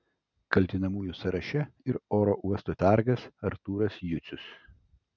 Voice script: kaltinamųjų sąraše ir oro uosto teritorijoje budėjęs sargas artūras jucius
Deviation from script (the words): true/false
true